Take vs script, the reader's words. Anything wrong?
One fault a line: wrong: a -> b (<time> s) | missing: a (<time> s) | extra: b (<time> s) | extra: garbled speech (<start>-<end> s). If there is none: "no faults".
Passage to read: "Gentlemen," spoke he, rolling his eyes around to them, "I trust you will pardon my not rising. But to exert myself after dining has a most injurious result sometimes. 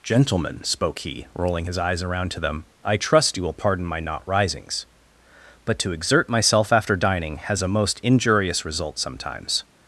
wrong: rising -> risings (4.3 s)